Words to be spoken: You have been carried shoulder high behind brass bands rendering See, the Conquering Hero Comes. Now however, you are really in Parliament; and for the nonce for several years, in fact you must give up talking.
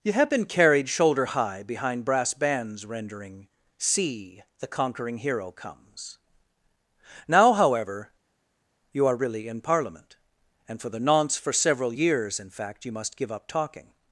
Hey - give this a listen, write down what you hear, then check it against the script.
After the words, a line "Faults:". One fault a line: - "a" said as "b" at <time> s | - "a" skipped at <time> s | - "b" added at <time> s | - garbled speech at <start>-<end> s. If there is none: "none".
You have been carried shoulder high behind brass bands rendering See, the Conquering Hero Comes. Now however, you are really in Parliament; and for the nonce for several years, in fact you must give up talking.
Faults:
none